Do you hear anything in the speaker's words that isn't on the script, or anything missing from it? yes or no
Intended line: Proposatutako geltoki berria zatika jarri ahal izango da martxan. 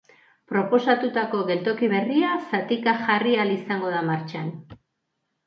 no